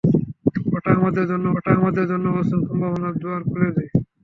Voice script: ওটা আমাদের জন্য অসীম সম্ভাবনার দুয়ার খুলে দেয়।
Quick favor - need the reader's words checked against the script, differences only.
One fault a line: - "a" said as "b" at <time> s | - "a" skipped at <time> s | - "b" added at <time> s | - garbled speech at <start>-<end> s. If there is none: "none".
- "ওটা আমাদের জন্য" added at 1.6 s